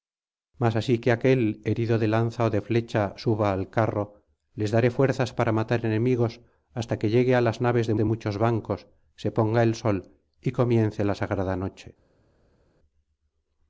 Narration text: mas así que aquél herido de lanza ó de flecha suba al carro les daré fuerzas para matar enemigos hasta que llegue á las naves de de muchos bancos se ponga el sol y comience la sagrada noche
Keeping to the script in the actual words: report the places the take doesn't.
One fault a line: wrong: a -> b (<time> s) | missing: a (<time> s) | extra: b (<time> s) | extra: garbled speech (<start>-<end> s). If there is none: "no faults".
no faults